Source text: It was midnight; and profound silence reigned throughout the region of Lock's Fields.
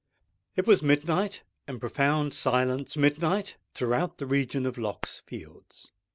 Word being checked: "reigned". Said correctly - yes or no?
no